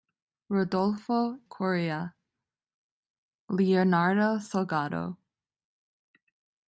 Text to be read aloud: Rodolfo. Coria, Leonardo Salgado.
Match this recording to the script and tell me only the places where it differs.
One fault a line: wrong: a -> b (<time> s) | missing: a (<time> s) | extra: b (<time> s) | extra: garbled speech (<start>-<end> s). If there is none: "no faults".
no faults